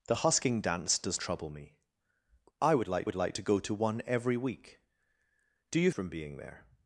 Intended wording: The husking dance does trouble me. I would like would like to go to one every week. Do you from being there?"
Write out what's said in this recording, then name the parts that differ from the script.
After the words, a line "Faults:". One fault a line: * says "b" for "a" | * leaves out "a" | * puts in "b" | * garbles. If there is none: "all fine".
The husking dance does trouble me. I would like would like to go to one every week. Do you from being there?"
Faults:
all fine